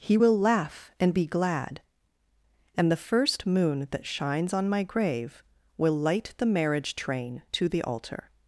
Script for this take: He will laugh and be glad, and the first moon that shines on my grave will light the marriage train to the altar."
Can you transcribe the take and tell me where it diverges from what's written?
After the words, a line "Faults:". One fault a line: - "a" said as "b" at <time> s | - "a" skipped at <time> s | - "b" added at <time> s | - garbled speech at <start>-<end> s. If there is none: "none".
He will laugh and be glad, and the first moon that shines on my grave will light the marriage train to the altar."
Faults:
none